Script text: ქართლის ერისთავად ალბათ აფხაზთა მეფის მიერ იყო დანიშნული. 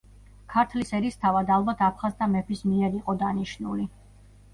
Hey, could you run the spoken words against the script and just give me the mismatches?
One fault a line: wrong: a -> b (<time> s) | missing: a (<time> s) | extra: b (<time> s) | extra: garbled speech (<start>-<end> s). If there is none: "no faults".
no faults